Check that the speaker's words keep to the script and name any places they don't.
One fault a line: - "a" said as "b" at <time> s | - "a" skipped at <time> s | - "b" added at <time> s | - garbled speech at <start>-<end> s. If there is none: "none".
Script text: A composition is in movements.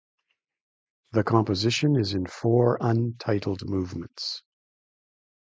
- "A" said as "The" at 1.1 s
- "four untitled" added at 2.2 s